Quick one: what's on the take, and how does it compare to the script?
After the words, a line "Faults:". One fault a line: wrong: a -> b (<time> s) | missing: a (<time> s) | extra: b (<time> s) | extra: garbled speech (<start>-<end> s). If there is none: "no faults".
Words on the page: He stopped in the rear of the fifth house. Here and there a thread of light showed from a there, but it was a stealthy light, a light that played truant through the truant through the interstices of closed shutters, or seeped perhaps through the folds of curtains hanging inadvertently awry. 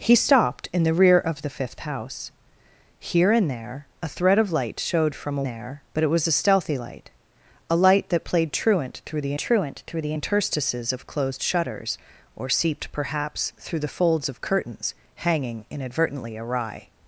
He stopped in the rear of the fifth house. Here and there a thread of light showed from a there, but it was a stealthy light, a light that played truant through the truant through the interstices of closed shutters, or seeped perhaps through the folds of curtains hanging inadvertently awry.
Faults:
no faults